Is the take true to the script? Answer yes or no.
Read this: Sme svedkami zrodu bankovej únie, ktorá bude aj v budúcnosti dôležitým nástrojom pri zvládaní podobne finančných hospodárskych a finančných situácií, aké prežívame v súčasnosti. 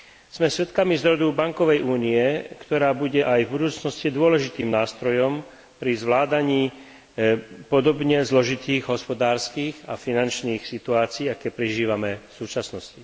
no